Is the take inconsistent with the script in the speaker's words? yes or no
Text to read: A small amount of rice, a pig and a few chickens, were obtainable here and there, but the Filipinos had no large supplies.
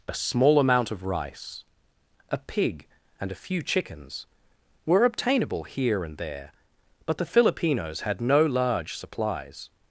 no